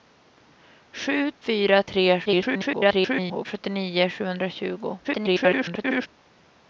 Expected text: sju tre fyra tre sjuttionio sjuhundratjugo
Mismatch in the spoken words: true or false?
true